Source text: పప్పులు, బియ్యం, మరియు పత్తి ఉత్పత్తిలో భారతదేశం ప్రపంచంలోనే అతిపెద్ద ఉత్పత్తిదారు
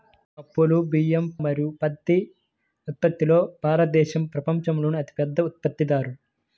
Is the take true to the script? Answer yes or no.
yes